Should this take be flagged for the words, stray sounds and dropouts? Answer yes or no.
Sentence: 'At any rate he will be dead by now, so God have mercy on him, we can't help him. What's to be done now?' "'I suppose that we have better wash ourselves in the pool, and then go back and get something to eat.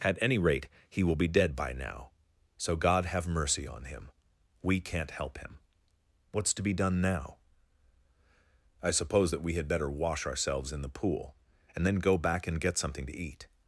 yes